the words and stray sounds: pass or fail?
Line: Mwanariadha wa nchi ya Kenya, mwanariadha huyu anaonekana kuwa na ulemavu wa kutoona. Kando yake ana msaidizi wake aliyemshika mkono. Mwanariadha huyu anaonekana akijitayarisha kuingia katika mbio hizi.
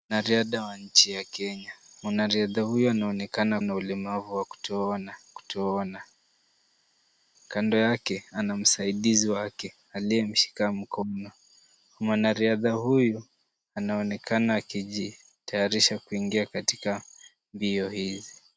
fail